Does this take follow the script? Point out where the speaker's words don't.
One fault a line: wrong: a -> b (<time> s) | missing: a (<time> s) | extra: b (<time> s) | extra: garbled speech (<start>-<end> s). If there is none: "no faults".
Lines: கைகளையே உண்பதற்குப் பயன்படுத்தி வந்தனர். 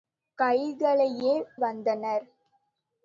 missing: உண்பதற்குப் பயன்படுத்தி (1.3 s)